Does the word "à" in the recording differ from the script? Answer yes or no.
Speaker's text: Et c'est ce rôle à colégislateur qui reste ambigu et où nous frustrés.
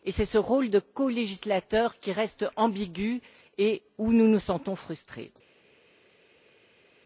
yes